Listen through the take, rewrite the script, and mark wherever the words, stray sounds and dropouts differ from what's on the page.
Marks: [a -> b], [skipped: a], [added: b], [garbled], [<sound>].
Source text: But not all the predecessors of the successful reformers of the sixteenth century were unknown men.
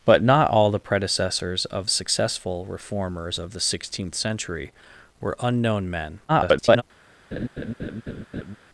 But not all the predecessors of [skipped: the] successful reformers of the sixteenth century were unknown men. [garbled] [laugh]